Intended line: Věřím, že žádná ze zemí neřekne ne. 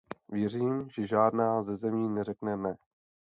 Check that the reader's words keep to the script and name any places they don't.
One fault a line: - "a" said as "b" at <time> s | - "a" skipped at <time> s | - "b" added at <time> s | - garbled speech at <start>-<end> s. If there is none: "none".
none